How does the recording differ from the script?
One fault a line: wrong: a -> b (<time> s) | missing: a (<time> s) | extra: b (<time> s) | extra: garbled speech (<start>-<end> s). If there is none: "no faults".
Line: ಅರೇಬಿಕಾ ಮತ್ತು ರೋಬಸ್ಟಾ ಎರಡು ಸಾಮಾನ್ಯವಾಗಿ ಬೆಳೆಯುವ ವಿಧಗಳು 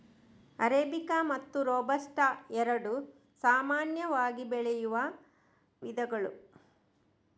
no faults